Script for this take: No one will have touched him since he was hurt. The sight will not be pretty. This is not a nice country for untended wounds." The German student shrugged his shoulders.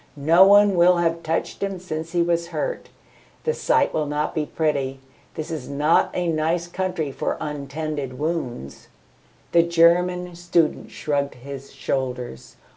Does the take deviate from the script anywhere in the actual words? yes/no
no